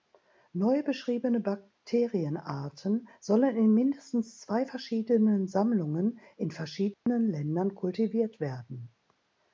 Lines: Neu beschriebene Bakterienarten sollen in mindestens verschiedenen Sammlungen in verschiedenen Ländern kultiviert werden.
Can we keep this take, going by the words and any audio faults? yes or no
no